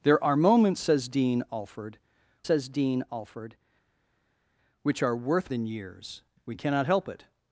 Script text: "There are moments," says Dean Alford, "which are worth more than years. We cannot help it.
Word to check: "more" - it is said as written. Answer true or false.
false